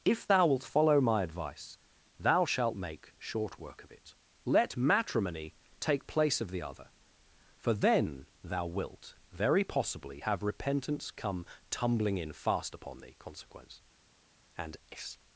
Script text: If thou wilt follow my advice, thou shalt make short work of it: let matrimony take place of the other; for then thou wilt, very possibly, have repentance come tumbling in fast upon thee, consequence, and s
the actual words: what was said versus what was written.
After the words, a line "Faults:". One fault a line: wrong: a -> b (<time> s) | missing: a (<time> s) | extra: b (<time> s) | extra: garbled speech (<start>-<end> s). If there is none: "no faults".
If thou wilt follow my advice, thou shalt make short work of it: let matrimony take place of the other; for then thou wilt, very possibly, have repentance come tumbling in fast upon thee, consequence, and s
Faults:
no faults